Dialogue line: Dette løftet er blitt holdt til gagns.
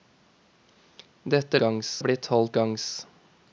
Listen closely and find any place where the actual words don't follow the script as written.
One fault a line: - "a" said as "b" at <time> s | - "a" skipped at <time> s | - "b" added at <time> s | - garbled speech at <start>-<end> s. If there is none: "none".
- "løftet" said as "gagns" at 1.6 s
- "til" skipped at 2.6 s